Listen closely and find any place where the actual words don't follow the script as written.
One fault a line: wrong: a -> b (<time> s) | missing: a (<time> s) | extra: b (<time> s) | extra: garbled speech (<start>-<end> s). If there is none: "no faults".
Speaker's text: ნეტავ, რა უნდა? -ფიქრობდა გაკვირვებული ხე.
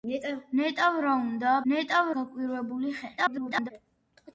wrong: ფიქრობდა -> ნეტავ (1.7 s)
extra: garbled speech (3.2-3.7 s)